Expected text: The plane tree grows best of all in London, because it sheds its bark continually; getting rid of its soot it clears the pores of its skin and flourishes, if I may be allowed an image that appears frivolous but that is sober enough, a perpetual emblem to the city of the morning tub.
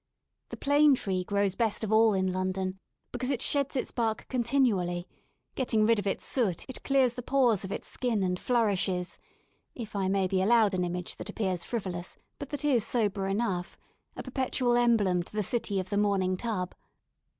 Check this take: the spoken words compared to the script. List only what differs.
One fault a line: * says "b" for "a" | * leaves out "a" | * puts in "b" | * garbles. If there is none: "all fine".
all fine